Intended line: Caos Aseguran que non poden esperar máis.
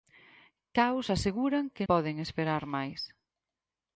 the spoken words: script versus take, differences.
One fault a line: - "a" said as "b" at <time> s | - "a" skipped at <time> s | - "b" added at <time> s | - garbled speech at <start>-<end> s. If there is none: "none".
- "non" skipped at 1.9 s